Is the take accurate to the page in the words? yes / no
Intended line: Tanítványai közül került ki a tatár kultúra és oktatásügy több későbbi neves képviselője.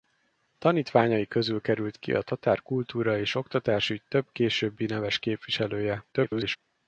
no